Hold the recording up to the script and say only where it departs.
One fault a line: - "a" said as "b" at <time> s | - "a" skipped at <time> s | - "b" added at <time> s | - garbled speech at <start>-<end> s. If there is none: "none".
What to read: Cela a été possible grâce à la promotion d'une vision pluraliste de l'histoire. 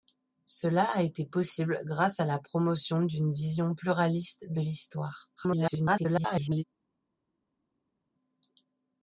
- garbled speech at 5.4-6.6 s